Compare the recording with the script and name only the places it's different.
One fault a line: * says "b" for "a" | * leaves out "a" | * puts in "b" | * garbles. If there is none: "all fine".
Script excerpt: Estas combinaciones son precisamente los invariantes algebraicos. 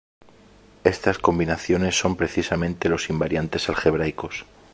all fine